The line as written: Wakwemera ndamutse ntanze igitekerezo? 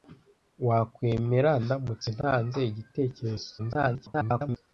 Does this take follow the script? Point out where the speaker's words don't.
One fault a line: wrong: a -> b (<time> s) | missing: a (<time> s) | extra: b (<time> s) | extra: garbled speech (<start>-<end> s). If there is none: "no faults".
extra: garbled speech (3.6-4.6 s)